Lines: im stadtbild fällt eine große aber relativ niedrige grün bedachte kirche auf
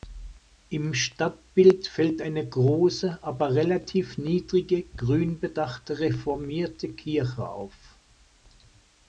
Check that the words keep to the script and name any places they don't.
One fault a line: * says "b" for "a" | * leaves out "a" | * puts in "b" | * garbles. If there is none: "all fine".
* puts in "reformierte"